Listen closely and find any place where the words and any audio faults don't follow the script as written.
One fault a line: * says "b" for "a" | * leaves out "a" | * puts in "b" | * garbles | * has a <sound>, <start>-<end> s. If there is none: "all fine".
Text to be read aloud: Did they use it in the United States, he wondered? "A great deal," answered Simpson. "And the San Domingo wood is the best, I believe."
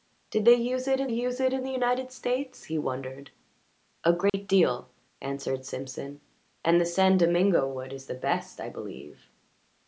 * puts in "use it in"
* has a dropout, 4.3-4.3 s